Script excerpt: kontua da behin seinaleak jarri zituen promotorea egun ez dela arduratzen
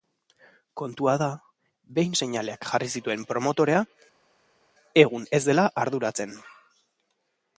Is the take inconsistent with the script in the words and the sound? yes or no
no